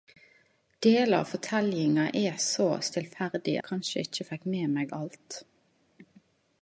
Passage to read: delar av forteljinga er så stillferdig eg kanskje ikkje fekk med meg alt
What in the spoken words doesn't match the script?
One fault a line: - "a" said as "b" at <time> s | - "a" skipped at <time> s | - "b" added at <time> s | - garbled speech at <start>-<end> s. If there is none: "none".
none